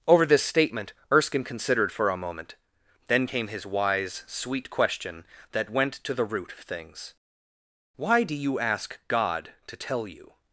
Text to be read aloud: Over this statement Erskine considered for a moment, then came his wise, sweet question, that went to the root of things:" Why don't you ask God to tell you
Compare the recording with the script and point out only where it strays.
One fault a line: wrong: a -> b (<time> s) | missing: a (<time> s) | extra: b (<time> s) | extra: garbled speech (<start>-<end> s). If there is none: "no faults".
wrong: don't -> do (8.2 s)